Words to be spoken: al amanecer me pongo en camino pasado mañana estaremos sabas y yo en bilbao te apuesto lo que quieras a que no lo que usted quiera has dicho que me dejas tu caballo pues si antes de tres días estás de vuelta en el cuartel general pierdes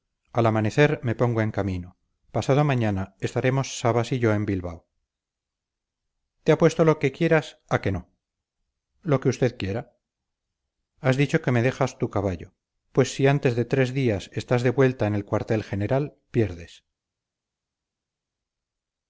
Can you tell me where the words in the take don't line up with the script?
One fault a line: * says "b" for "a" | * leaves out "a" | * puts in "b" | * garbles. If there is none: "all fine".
all fine